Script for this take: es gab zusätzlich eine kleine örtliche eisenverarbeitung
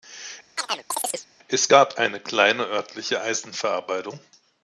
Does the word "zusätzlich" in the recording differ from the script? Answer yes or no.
yes